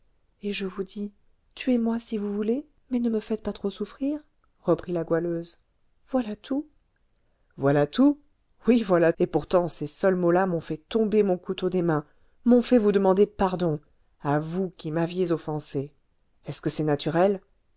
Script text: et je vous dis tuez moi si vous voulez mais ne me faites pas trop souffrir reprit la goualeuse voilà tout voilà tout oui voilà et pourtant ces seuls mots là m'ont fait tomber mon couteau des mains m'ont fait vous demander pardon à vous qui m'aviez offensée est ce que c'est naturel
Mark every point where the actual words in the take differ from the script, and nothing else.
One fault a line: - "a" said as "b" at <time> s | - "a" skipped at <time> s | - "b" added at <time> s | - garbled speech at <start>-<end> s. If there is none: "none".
none